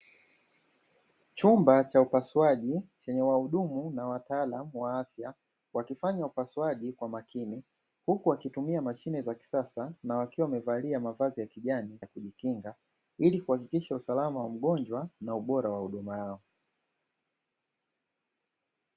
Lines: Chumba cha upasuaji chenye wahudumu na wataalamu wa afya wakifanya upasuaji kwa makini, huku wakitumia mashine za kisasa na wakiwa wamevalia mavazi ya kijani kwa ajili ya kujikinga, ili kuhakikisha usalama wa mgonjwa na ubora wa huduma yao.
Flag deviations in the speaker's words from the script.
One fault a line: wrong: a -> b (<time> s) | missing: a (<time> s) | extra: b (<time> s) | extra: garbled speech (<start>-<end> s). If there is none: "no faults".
missing: kwa ajili (12.0 s)